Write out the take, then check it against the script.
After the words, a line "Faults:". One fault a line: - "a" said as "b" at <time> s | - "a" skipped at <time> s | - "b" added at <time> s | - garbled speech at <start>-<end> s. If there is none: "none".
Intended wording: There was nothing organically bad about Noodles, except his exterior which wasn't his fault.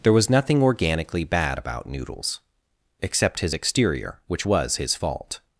There was nothing organically bad about Noodles, except his exterior which was his fault.
Faults:
- "wasn't" said as "was" at 4.4 s